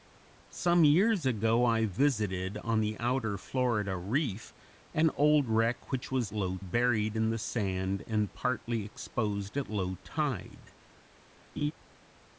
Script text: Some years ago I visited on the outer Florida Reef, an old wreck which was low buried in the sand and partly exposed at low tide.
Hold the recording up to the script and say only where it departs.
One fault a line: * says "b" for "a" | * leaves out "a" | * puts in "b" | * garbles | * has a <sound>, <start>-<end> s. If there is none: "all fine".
* has a laugh, 11.6-11.7 s